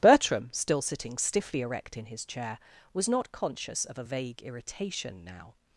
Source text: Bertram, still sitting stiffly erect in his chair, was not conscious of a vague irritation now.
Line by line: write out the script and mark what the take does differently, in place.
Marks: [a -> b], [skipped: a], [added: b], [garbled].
Bertram, still sitting stiffly erect in his chair, was not conscious of a vague irritation now.